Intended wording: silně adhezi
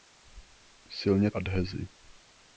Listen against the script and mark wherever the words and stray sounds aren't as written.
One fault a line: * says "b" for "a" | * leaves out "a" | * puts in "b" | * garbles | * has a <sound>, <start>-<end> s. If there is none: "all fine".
all fine